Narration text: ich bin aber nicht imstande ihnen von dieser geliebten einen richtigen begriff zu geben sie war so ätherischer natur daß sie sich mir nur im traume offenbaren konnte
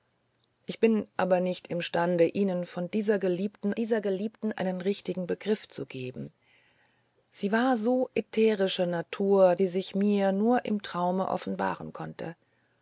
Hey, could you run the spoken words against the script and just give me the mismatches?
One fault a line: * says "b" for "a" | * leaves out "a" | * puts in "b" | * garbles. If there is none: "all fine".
* puts in "dieser geliebten"
* leaves out "daß"